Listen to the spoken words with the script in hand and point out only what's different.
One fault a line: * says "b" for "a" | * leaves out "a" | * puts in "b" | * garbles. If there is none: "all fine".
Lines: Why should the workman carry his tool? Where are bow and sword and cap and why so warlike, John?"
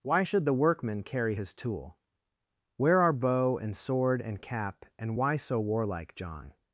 all fine